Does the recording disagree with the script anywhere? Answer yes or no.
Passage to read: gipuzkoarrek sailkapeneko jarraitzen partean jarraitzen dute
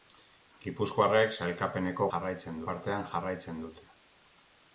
no